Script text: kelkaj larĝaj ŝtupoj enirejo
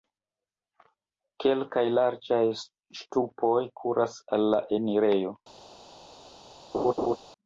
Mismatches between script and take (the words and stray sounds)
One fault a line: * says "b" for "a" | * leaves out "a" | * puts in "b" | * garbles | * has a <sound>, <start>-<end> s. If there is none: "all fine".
* puts in "kuras al la"
* has a laugh, 6.7-7.2 s